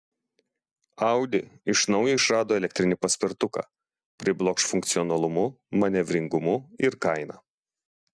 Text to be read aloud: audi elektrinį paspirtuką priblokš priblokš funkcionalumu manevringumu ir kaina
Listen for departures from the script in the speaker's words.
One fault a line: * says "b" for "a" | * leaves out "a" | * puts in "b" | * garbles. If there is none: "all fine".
* puts in "iš naujo išrado"
* leaves out "priblokš"